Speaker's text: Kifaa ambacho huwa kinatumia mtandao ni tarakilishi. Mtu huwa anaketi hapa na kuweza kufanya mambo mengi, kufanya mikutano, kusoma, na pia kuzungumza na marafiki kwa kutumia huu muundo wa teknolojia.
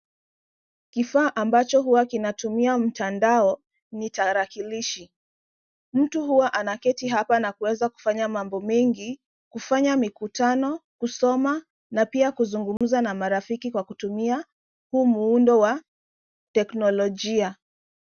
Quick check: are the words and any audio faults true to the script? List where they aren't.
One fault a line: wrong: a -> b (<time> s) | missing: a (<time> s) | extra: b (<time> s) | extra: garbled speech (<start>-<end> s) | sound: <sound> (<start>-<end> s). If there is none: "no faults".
sound: dropout (12.8-12.8 s)